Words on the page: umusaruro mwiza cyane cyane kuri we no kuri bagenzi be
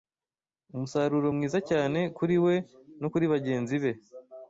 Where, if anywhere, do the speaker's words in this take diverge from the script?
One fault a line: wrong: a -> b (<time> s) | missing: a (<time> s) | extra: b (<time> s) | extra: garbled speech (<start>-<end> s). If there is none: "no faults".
missing: cyane (2.0 s)